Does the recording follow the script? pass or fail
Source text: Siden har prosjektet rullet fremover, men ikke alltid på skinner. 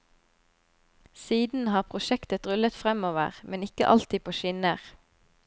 pass